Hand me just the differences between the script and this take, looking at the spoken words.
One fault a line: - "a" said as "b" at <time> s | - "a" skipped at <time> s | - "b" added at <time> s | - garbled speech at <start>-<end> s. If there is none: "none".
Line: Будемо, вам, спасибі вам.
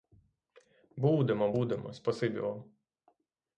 - "вам" said as "будемо" at 1.5 s